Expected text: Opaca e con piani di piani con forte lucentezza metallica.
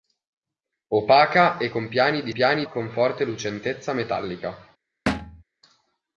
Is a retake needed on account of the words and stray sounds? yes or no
yes